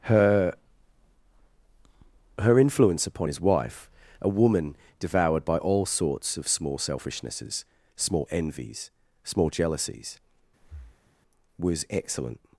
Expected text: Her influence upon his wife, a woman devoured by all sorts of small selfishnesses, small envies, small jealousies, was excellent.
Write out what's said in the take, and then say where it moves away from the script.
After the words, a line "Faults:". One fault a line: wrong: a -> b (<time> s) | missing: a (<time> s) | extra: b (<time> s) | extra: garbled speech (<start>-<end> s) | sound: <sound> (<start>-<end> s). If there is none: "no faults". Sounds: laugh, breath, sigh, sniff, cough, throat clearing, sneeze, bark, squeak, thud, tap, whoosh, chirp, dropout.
Her her influence upon his wife, a woman devoured by all sorts of small selfishnesses, small envies, small jealousies, was excellent.
Faults:
extra: her (2.4 s)
sound: breath (10.6-11.1 s)